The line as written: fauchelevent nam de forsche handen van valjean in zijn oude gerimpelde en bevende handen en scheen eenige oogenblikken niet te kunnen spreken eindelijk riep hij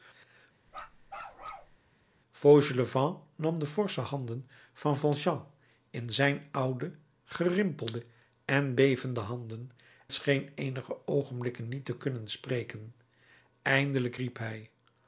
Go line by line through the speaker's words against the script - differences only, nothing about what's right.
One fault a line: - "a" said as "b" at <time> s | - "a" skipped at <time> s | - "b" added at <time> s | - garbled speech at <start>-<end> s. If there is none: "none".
- "en" skipped at 9.7 s